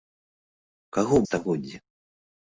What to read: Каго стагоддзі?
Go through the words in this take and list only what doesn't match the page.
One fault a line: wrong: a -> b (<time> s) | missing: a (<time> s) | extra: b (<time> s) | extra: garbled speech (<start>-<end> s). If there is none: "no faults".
no faults